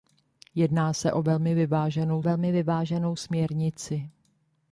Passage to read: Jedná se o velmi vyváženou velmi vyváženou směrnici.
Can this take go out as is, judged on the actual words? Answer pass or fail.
pass